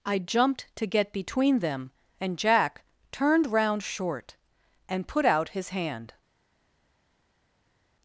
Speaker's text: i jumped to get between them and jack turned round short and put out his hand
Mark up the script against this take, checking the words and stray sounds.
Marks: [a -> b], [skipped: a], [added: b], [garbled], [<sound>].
i jumped to get between them and jack turned round short and put out his hand